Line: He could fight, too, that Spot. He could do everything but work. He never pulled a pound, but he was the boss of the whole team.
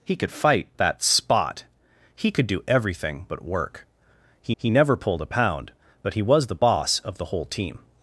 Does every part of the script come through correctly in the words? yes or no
no